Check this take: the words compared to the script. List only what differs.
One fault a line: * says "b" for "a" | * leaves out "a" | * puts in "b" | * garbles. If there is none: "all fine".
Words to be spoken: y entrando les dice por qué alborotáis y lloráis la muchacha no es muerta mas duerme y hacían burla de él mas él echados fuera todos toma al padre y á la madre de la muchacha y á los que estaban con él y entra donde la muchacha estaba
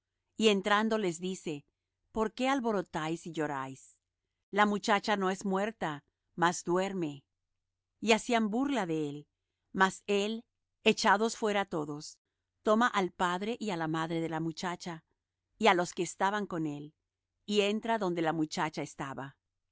all fine